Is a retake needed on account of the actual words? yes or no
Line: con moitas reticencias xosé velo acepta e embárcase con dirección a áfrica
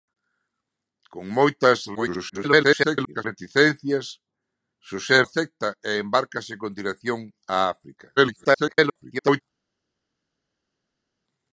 yes